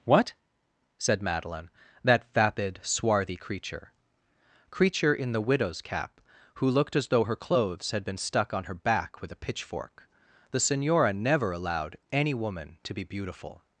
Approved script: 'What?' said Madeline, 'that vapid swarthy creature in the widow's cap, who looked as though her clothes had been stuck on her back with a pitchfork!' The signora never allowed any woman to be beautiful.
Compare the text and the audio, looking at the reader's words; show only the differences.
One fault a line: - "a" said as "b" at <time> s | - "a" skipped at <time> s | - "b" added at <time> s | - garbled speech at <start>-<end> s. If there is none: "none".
- "creature" added at 4.7 s